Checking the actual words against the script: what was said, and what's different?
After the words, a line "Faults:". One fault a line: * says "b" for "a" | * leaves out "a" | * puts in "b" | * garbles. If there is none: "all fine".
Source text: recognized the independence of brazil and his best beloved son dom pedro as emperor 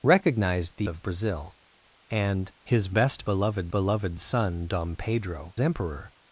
recognized the of brazil and his best beloved beloved son dom pedro emperor
Faults:
* leaves out "independence"
* puts in "beloved"
* leaves out "as"